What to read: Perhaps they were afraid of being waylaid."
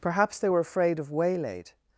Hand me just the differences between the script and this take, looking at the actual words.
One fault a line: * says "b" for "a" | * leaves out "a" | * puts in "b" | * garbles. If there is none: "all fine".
* leaves out "being"